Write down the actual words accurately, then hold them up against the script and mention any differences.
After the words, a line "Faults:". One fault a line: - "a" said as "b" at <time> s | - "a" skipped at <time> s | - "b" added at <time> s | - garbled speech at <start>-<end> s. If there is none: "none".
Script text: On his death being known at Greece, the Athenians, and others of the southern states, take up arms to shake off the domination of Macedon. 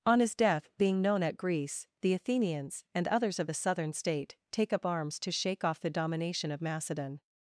On his death being known at Greece, the Athenians, and others of the southern state, take up arms to shake off the domination of Macedon.
Faults:
- "states" said as "state" at 3.9 s